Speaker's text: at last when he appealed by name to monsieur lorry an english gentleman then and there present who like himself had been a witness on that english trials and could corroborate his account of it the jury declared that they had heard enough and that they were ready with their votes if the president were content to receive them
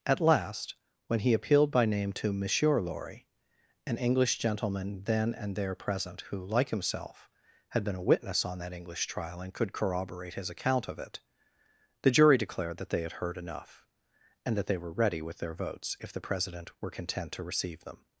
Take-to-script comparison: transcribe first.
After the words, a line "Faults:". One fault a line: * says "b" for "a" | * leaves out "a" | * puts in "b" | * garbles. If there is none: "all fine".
at last when he appealed by name to monsieur lorry an english gentleman then and there present who like himself had been a witness on that english trial and could corroborate his account of it the jury declared that they had heard enough and that they were ready with their votes if the president were content to receive them
Faults:
* says "trial" for "trials"